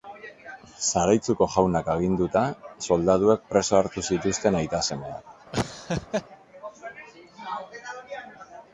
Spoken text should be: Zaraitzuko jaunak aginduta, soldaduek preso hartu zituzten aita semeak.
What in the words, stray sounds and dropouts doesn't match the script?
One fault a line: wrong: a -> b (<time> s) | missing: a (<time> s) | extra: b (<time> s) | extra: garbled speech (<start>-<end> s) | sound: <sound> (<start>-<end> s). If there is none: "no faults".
sound: laugh (5.5-6.3 s)